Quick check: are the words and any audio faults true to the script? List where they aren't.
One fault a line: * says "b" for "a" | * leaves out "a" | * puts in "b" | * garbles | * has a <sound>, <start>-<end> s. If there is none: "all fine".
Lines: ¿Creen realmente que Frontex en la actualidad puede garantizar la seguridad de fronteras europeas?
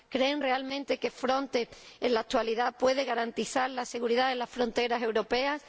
* puts in "las"